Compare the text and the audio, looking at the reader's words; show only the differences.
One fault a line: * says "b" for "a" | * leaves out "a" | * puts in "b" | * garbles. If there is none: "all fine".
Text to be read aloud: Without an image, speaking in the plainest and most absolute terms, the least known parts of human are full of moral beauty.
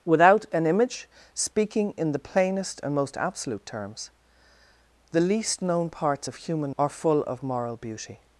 all fine